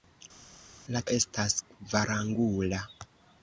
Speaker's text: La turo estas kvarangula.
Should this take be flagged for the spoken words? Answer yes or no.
yes